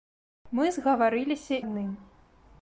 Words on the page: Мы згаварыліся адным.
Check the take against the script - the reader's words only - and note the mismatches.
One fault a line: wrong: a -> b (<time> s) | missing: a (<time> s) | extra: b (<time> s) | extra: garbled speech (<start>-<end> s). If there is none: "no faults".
no faults